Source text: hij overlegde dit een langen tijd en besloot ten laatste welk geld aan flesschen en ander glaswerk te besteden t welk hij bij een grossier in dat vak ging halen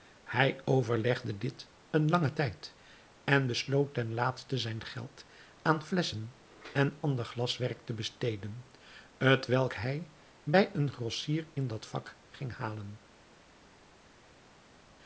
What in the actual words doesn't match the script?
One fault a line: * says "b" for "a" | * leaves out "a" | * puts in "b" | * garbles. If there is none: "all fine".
* says "zijn" for "welk"